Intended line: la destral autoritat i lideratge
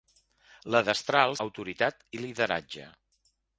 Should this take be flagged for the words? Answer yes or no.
no